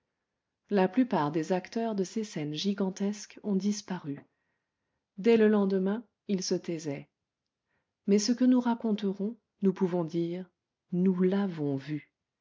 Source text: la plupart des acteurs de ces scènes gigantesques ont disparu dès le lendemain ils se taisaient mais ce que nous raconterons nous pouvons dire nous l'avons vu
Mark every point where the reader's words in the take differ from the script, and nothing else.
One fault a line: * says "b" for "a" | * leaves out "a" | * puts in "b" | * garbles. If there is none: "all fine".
all fine